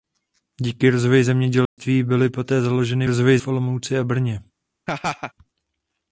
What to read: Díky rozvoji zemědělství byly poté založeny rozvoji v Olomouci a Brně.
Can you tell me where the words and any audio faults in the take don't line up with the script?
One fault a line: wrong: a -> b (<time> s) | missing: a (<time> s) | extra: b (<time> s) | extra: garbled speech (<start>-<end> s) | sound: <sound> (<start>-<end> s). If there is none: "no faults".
sound: dropout (1.7-1.8 s)
sound: laugh (4.9-5.3 s)